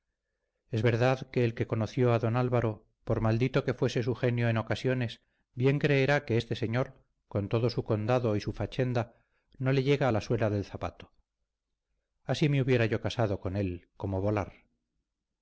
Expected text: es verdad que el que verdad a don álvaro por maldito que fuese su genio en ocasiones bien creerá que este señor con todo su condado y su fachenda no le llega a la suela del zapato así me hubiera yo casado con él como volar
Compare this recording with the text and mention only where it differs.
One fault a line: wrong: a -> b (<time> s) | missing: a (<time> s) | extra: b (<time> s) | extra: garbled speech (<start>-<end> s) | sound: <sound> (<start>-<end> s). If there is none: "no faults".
wrong: verdad -> conoció (1.7 s)